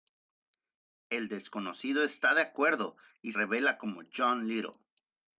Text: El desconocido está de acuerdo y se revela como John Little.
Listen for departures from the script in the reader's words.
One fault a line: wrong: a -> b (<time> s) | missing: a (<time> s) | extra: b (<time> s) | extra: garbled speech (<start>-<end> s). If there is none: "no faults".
missing: se (3.3 s)